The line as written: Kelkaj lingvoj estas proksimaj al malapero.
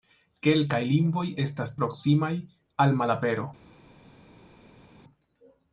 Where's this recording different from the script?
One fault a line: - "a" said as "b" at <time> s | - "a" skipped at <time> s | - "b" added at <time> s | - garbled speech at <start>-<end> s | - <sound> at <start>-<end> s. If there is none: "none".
none